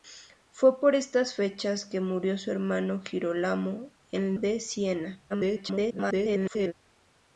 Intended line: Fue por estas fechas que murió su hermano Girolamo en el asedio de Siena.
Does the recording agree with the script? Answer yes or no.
no